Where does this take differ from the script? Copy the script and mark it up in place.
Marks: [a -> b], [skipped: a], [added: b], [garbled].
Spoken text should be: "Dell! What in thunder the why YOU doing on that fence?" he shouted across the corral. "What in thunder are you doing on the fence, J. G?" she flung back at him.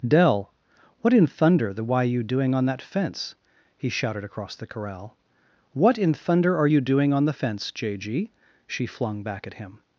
"Dell! What in thunder the why YOU doing on that fence?" he shouted across the corral. "What in thunder are you doing on the fence, J. G?" she flung back at him.